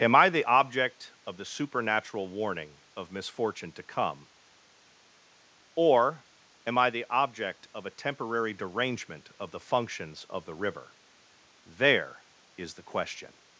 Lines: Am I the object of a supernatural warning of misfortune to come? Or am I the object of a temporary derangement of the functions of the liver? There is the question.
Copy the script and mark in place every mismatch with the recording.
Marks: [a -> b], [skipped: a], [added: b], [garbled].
Am I the object of [a -> the] supernatural warning of misfortune to come? Or am I the object of a temporary derangement of the functions of the [liver? -> river] There is the question.